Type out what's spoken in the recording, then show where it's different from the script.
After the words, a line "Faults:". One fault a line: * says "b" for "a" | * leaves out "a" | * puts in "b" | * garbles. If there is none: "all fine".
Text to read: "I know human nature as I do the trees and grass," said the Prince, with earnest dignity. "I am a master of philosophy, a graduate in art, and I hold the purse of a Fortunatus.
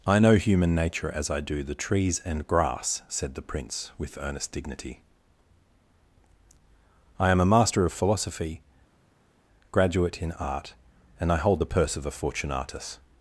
"I know human nature as I do the trees and grass," said the Prince, with earnest dignity. "I am a master of philosophy, graduate in art, and I hold the purse of a Fortunatus.
Faults:
* leaves out "a"